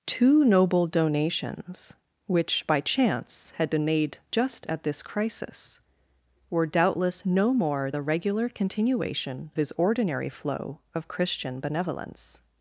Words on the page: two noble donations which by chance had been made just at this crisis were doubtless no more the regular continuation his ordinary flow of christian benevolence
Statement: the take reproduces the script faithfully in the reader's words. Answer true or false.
true